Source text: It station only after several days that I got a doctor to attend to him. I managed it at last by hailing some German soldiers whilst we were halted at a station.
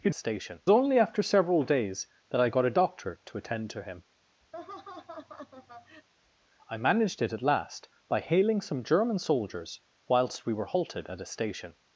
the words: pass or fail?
pass